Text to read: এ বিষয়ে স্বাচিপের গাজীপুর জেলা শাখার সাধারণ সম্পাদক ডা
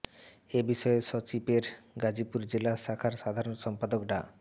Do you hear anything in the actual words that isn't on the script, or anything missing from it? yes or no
no